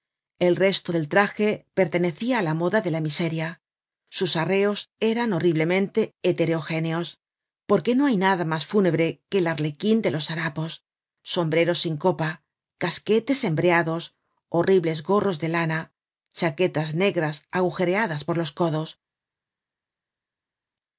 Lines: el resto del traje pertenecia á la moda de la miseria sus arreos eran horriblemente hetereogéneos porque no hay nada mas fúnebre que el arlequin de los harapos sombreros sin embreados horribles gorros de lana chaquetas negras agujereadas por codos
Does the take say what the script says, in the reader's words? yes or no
no